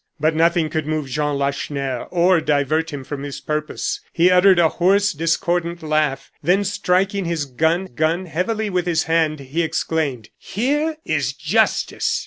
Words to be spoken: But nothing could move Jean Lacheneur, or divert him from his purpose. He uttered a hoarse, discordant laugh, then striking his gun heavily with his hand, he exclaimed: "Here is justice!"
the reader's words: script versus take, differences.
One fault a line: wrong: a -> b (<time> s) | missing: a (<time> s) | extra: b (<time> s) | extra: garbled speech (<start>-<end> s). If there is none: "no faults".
extra: gun (7.8 s)